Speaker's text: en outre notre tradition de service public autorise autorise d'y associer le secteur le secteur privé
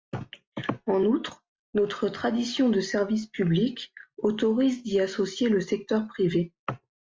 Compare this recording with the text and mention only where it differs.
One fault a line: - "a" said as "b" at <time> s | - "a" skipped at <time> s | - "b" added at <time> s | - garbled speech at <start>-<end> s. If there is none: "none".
- "autorise" skipped at 4.8 s
- "le secteur" skipped at 6.1 s